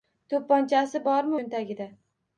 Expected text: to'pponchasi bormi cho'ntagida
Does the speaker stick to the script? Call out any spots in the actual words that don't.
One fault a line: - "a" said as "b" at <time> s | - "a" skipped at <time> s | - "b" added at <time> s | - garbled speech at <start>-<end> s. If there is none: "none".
none